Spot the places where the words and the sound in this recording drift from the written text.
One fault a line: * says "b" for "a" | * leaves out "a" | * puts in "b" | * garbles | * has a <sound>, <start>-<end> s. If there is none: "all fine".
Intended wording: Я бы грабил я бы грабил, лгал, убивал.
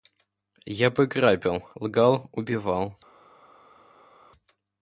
* leaves out "я бы грабил"